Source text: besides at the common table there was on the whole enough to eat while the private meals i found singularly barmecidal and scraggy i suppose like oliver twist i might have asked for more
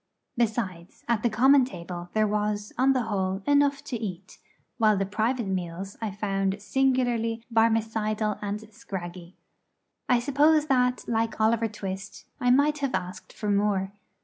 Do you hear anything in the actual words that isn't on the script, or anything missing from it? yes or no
yes